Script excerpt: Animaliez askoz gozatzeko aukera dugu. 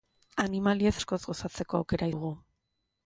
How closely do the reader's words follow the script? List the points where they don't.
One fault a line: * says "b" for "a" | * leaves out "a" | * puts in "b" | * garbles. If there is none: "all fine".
all fine